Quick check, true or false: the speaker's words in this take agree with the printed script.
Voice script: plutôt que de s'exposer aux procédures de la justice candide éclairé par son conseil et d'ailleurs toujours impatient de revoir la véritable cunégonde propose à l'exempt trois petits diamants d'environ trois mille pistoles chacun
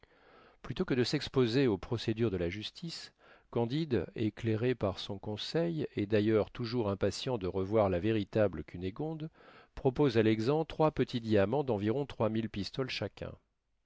true